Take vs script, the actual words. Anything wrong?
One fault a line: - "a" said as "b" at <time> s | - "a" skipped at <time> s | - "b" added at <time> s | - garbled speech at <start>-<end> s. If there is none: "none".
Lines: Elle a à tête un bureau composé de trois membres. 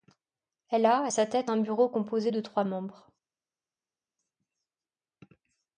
- "sa" added at 1.1 s